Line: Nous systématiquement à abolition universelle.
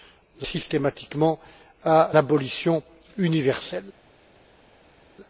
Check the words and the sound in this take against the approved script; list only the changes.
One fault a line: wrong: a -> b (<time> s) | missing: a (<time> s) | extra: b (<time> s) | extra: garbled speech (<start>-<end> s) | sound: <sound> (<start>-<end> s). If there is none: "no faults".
no faults